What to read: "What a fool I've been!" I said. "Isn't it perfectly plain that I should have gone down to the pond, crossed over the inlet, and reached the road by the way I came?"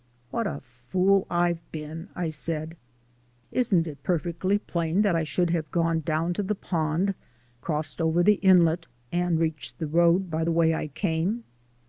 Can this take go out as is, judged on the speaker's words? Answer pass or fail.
pass